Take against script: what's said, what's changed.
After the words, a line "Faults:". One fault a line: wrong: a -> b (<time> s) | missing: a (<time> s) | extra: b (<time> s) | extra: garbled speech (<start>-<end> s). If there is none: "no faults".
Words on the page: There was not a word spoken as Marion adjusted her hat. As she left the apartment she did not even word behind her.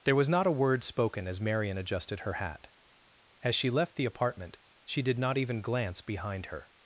There was not a word spoken as Marion adjusted her hat. As she left the apartment she did not even glance behind her.
Faults:
wrong: word -> glance (5.6 s)